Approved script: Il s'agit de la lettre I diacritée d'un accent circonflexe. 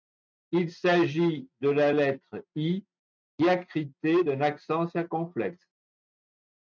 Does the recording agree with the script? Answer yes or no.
yes